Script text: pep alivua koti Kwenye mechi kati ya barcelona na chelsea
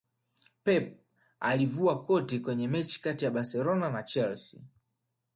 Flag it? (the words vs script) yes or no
no